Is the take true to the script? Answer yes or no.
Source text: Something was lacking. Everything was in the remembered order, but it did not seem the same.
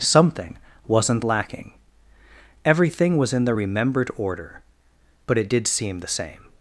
no